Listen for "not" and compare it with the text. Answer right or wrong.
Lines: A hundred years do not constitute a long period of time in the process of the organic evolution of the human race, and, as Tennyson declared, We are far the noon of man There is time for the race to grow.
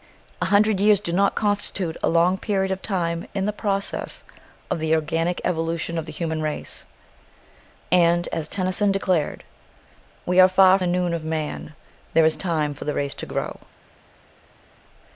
right